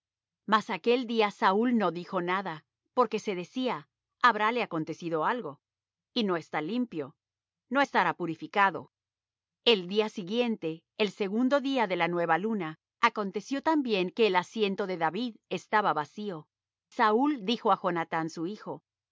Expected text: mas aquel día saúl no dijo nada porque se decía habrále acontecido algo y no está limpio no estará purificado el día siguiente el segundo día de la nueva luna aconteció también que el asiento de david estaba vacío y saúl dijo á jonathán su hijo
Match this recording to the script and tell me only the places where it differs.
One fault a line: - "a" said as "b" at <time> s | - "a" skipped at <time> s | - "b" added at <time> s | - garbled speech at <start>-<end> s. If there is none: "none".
- "y" skipped at 16.5 s